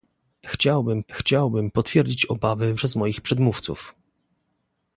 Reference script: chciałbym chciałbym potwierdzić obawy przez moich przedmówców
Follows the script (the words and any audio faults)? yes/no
yes